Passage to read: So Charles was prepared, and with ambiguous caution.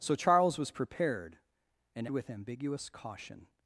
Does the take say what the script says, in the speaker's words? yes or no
yes